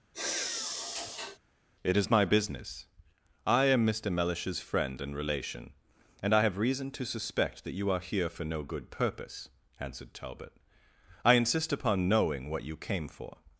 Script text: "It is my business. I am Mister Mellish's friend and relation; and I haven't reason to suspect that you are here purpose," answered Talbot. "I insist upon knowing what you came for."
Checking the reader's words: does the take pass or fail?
fail